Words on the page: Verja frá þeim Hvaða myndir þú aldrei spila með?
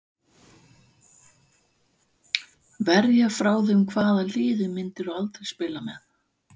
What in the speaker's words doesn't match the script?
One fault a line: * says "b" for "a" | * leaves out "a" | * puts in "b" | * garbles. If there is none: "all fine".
* puts in "liði"